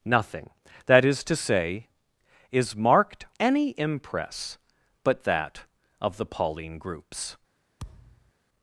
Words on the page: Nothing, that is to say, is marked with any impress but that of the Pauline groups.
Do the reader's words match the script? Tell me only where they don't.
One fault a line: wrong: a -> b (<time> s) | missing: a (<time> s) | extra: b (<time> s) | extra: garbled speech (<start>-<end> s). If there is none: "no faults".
missing: with (3.2 s)